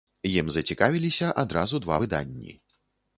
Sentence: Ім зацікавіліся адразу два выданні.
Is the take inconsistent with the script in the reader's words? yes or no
no